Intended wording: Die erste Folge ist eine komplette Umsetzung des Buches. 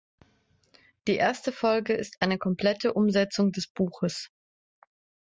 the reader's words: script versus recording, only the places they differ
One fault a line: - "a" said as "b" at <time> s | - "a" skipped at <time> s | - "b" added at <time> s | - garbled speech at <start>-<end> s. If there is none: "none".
none